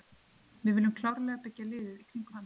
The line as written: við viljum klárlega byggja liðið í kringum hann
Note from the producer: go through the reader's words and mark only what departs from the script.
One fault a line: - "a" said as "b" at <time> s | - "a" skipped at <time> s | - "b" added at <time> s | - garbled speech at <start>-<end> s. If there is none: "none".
none